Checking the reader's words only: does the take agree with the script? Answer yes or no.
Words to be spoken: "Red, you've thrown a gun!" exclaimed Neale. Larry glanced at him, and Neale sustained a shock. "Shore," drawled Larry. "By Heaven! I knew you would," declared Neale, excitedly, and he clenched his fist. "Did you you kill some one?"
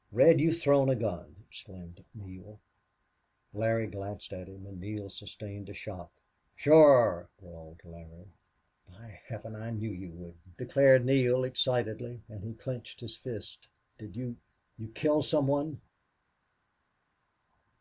yes